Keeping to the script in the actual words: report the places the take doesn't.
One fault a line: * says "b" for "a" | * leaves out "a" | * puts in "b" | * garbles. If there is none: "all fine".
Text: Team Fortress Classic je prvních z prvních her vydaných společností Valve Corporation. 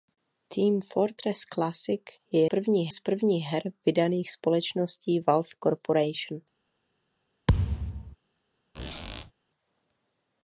all fine